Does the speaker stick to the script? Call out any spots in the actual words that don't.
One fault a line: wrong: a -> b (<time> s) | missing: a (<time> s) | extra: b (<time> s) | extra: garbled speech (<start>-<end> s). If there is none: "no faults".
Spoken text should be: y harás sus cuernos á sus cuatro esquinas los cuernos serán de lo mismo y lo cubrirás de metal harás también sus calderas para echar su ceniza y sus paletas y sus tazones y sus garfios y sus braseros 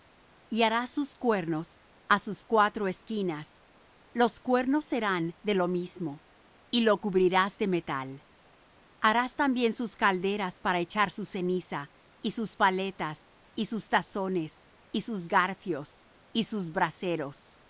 no faults